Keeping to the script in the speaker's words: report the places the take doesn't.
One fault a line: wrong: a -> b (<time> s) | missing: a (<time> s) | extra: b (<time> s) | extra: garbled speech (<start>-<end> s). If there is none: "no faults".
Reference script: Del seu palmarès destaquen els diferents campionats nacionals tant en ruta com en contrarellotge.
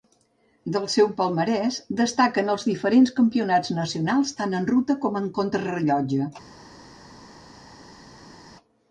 no faults